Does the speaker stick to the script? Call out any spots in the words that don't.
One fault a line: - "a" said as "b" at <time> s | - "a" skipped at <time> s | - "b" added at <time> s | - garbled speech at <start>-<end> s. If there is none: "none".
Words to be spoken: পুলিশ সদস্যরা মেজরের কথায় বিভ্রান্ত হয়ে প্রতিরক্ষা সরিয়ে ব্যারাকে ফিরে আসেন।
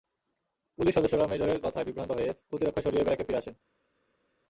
none